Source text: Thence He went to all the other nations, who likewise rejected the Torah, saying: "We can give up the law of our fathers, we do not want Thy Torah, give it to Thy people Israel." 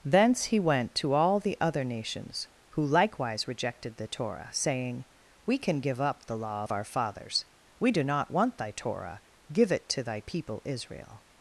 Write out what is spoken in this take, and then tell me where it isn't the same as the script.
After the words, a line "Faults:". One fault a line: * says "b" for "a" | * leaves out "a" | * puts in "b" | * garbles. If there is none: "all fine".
Thence He went to all the other nations, who likewise rejected the Torah, saying: "We can give up the law of our fathers, we do not want Thy Torah, give it to Thy people Israel."
Faults:
all fine